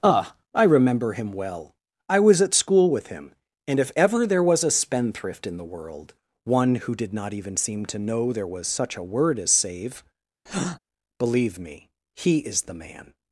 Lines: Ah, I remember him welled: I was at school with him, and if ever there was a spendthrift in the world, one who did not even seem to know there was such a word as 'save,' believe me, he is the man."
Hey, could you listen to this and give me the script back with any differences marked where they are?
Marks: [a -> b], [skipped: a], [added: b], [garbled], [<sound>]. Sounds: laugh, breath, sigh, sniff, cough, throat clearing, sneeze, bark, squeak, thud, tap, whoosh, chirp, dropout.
Ah, I remember him [welled: -> well] I was at school with him, and if ever there was a spendthrift in the world, one who did not even seem to know there was such a word as 'save,' [breath] believe me, he is the man."